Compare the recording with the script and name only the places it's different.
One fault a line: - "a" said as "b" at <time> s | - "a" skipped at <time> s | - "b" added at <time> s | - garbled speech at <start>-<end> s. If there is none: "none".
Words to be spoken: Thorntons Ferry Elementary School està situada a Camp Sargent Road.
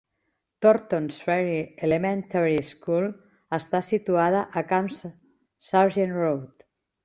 none